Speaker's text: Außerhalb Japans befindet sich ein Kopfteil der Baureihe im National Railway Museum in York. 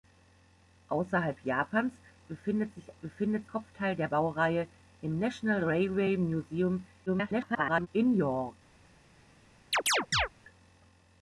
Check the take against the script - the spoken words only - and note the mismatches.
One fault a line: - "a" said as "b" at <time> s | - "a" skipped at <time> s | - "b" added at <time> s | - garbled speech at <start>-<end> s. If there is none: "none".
- "ein" said as "befindet" at 3.0 s
- garbled speech at 7.1-7.9 s